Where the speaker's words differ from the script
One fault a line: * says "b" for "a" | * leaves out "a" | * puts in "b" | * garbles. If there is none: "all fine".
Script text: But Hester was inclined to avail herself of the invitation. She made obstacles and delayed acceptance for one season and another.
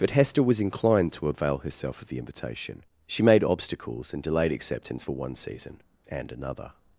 all fine